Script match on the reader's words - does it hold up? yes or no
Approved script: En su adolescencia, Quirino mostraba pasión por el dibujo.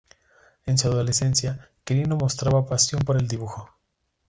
yes